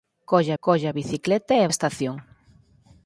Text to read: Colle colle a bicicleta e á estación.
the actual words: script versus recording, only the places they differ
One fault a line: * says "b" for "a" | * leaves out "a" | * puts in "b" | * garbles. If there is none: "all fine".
all fine